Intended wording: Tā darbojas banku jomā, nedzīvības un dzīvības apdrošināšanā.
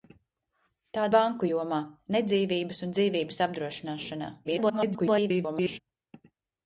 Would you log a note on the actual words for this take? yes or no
yes